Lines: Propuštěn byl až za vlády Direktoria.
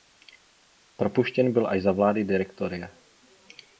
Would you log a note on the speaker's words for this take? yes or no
no